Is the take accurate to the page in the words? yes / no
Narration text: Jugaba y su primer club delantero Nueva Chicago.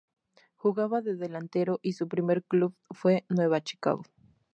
no